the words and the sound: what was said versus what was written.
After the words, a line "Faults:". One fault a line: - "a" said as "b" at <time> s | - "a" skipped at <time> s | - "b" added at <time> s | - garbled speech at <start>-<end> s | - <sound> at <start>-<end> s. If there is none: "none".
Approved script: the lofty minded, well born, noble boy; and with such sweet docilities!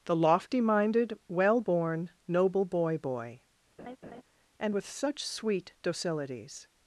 the lofty minded, well born, noble boy boy; and with such sweet docilities!
Faults:
- "boy" added at 3.0 s
- laugh at 3.8-4.2 s